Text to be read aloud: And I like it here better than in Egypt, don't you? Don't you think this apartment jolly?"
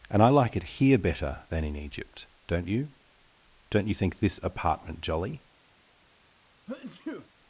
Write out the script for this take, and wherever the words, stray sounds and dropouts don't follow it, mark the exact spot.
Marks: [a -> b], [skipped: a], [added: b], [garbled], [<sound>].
And I like it here better than in Egypt, don't you? Don't you think this apartment jolly?" [sneeze]